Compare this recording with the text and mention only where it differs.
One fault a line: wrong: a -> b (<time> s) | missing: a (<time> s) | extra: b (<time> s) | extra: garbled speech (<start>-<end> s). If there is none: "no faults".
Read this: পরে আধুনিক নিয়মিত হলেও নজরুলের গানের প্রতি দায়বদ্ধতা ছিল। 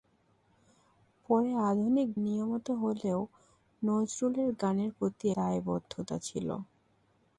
no faults